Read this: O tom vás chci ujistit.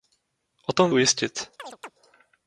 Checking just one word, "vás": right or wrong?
wrong